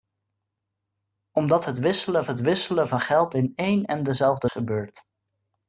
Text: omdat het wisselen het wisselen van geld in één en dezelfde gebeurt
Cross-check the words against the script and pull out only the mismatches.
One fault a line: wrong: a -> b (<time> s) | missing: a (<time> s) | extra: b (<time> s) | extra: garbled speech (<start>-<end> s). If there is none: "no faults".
no faults